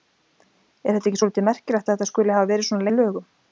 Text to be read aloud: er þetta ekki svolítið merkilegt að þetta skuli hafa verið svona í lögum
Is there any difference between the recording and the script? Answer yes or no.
no